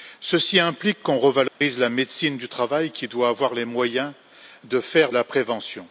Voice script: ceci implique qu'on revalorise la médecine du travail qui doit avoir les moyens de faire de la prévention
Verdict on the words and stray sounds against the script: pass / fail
fail